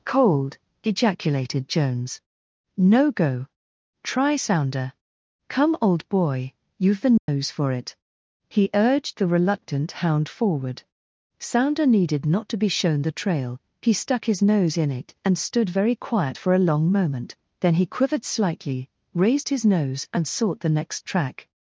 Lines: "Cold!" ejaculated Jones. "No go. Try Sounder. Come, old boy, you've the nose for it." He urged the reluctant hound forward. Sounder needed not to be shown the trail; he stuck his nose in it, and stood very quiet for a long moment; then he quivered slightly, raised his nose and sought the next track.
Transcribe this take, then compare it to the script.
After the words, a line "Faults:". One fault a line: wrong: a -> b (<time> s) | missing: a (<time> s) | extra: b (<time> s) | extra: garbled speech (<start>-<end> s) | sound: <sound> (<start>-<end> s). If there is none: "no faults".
"Cold!" ejaculated Jones. "No go. Try Sounder. Come, old boy, you've the nose for it." He urged the reluctant hound forward. Sounder needed not to be shown the trail; he stuck his nose in it, and stood very quiet for a long moment; then he quivered slightly, raised his nose and sought the next track.
Faults:
sound: dropout (7.2-7.3 s)